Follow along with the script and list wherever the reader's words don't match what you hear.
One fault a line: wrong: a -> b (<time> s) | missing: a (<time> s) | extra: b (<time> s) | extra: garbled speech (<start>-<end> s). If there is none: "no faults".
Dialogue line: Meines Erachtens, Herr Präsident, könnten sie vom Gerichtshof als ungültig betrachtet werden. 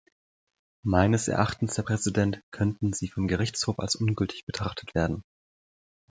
no faults